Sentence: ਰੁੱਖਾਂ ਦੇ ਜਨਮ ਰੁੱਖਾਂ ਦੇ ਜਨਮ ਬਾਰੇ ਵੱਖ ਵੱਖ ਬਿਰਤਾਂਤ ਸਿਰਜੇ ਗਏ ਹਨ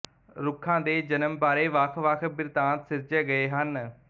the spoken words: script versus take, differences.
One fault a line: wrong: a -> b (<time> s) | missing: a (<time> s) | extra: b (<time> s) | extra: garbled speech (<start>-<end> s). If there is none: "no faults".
missing: ਰੁੱਖਾਂ ਦੇ ਜਨਮ (1.4 s)